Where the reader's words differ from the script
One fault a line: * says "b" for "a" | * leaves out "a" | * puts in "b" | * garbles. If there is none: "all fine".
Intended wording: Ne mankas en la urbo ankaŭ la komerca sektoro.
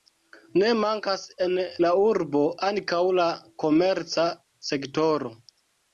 all fine